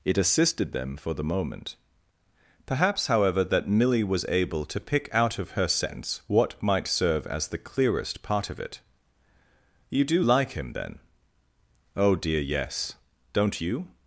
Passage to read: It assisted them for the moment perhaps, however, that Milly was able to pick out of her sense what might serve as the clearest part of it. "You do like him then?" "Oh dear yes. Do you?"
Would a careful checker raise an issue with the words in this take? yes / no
yes